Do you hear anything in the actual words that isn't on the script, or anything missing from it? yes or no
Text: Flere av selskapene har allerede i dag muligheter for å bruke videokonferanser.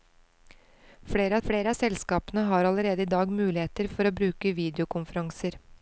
yes